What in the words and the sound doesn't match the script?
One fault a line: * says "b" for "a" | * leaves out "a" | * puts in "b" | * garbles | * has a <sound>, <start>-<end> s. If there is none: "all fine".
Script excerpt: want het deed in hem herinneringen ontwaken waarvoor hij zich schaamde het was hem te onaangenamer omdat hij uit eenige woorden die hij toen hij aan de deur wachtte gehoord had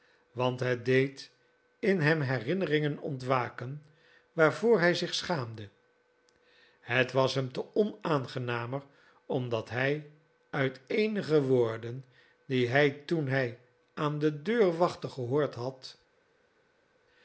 all fine